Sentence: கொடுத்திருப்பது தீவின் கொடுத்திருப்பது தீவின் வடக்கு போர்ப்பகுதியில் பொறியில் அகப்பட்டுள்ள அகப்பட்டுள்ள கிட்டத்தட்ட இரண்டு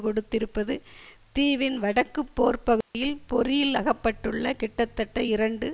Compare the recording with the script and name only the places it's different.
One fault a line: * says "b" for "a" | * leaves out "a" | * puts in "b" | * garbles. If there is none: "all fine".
* leaves out "கொடுத்திருப்பது தீவின்"
* leaves out "அகப்பட்டுள்ள"